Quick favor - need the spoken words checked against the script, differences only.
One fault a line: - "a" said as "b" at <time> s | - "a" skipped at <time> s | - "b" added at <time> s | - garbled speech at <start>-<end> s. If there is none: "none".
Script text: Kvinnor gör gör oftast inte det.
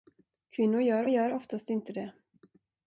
none